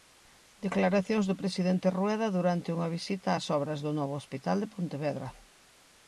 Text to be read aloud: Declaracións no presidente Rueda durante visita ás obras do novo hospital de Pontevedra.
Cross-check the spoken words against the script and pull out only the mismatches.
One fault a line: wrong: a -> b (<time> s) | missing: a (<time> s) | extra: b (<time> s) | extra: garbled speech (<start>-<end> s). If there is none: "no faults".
wrong: no -> do (1.3 s)
extra: unha (2.8 s)